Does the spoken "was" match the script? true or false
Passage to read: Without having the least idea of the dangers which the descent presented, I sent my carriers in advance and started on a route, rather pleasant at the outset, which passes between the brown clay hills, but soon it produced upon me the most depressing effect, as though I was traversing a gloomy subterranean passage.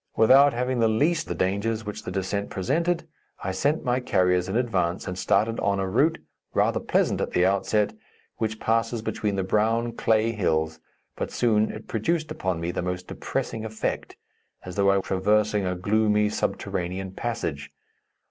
false